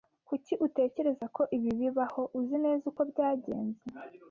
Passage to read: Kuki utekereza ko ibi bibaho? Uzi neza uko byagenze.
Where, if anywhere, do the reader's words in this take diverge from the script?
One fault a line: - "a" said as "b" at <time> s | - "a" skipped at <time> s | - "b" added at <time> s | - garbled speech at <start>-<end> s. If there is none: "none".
none